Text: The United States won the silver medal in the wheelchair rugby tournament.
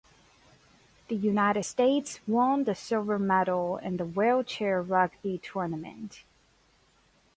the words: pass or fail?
pass